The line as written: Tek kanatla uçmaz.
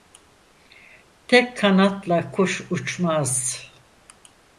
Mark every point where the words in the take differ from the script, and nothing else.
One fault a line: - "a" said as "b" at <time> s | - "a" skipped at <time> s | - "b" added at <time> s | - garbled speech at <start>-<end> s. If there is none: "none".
- "kuş" added at 2.3 s